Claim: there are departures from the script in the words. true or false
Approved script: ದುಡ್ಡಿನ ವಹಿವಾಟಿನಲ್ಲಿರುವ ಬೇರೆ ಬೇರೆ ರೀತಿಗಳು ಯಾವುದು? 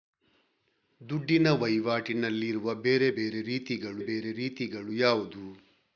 true